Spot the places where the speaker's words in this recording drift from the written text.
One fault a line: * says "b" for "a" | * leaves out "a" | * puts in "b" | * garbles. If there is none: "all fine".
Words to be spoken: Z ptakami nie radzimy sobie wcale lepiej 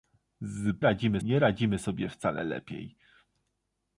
* says "radzimy" for "ptakami"